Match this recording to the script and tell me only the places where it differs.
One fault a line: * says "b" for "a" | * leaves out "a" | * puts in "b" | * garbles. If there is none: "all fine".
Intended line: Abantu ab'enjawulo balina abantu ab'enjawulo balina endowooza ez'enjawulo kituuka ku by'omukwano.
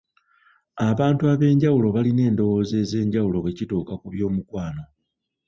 * leaves out "abantu ab'enjawulo balina"
* puts in "bwe"